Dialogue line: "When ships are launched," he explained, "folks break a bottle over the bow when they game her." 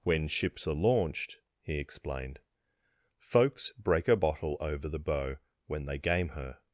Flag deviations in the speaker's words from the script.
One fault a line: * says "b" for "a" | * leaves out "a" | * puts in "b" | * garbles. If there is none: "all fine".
all fine